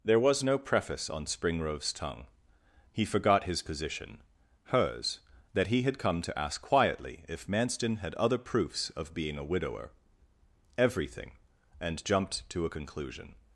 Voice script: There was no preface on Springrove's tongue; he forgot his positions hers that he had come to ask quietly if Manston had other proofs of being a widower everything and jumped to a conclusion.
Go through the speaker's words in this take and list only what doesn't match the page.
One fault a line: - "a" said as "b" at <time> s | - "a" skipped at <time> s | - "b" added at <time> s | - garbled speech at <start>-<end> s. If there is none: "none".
- "positions" said as "position" at 3.6 s